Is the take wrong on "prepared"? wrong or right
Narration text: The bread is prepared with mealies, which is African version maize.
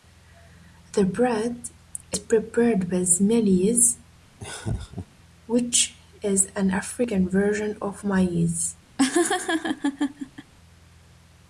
right